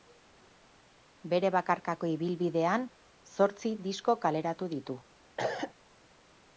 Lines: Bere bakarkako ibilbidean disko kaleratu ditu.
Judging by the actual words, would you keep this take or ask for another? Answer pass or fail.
fail